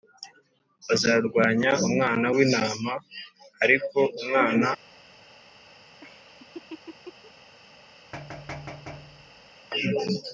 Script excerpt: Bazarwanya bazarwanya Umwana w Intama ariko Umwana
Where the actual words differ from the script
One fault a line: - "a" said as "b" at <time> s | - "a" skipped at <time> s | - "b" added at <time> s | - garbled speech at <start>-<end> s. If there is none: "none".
- "bazarwanya" skipped at 1.7 s